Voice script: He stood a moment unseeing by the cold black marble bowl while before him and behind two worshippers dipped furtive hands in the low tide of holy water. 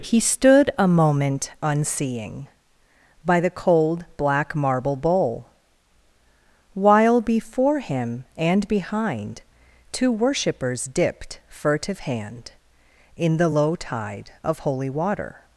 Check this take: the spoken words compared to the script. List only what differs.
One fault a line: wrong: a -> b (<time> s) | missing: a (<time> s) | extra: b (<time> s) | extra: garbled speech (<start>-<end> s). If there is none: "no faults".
wrong: hands -> hand (12.0 s)